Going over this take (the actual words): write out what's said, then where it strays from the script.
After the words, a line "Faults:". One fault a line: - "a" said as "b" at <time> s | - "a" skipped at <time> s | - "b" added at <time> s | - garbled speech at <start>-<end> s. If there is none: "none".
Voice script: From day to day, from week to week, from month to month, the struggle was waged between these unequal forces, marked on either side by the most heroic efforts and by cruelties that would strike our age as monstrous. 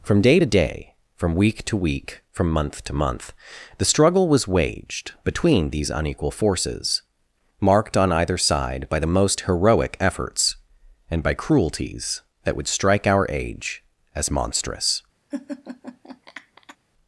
From day to day, from week to week, from month to month, the struggle was waged between these unequal forces, marked on either side by the most heroic efforts and by cruelties that would strike our age as monstrous.
Faults:
none